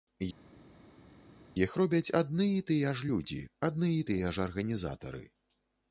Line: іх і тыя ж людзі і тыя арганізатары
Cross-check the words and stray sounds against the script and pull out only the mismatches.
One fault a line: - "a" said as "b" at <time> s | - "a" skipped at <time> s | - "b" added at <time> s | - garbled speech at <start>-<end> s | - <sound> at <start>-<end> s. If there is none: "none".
- "робяць адны" added at 1.8 s
- "адны" added at 3.7 s
- "ж" added at 4.4 s